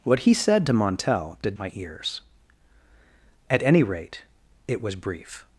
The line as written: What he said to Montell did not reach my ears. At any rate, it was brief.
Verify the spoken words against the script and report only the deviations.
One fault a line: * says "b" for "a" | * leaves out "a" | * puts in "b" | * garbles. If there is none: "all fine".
* leaves out "not reach"